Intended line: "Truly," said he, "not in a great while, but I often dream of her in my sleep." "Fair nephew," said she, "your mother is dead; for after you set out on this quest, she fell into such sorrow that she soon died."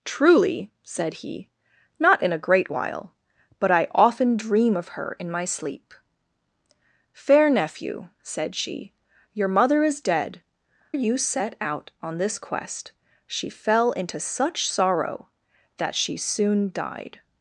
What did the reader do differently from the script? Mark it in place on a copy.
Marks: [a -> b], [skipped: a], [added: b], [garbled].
"Truly," said he, "not in a great while, but I often dream of her in my sleep." "Fair nephew," said she, "your mother is dead; [skipped: for after] you set out on this quest, she fell into such sorrow that she soon died."